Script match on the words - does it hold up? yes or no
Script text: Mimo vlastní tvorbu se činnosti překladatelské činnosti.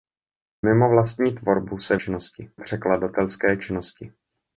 yes